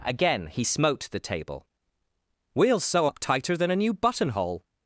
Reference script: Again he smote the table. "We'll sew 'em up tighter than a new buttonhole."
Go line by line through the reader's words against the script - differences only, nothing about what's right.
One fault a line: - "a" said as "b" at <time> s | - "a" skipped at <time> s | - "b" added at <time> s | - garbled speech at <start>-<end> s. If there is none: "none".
- "em" skipped at 3.1 s